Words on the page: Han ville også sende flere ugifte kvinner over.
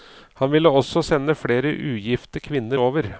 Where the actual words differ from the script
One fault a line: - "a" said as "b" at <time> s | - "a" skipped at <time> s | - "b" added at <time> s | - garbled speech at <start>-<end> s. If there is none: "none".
none